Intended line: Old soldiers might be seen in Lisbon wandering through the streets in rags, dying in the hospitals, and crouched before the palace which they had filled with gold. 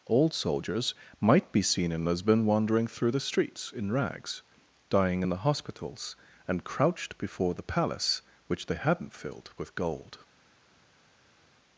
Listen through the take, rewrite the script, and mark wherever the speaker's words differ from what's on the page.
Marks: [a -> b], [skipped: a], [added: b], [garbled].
Old soldiers might be seen in Lisbon wandering through the streets in rags, dying in the hospitals, and crouched before the palace which they [had -> hadn't] filled with gold.